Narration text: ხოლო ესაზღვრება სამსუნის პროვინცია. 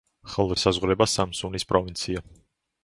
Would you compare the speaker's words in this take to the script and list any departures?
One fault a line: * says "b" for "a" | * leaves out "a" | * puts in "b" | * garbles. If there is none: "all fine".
all fine